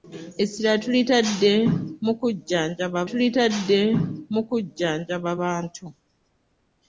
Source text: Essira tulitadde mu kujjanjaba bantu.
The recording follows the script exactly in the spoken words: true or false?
false